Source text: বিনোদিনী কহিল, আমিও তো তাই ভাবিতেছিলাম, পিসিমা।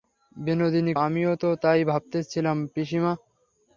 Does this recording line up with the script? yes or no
no